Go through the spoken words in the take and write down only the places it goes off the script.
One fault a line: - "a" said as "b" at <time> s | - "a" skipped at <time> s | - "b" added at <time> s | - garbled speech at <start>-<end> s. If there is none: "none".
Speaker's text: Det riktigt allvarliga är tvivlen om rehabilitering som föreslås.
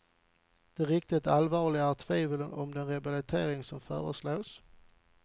- "den" added at 2.7 s